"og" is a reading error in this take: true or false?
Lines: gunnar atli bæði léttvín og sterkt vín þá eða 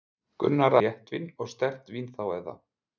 false